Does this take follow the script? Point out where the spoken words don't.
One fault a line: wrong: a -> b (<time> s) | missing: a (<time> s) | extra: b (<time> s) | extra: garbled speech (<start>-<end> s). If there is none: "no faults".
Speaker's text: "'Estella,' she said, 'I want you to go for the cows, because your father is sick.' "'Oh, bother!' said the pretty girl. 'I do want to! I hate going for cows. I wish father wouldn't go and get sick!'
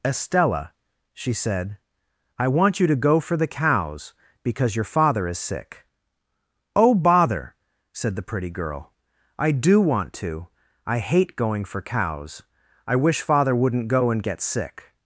no faults